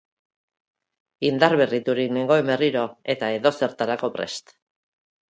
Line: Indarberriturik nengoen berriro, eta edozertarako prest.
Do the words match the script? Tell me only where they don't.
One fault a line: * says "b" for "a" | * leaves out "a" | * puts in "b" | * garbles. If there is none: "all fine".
all fine